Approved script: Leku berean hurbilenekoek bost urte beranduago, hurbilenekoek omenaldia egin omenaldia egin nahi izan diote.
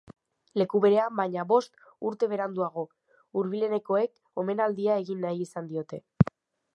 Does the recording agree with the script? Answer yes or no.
no